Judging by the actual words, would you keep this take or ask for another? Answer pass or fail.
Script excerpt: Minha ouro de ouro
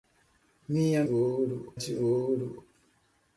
pass